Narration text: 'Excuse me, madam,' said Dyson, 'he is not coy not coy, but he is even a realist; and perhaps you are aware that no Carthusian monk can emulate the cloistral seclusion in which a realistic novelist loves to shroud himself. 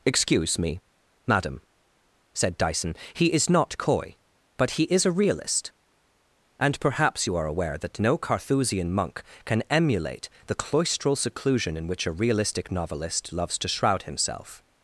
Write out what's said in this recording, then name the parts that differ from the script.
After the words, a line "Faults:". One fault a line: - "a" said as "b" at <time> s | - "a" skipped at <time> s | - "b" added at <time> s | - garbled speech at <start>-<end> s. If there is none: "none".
'Excuse me, madam,' said Dyson, 'he is not coy, but he is a realist; and perhaps you are aware that no Carthusian monk can emulate the cloistral seclusion in which a realistic novelist loves to shroud himself.
Faults:
- "not coy" skipped at 4.2 s
- "even" skipped at 5.0 s